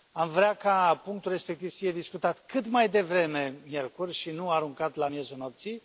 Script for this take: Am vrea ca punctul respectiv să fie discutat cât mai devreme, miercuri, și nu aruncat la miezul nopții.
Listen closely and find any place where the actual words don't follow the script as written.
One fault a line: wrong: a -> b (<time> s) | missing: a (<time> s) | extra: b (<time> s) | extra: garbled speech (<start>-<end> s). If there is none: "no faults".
no faults